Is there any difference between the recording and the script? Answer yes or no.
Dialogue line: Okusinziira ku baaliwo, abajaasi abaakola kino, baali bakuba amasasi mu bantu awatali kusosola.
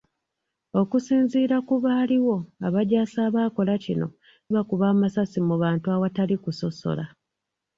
yes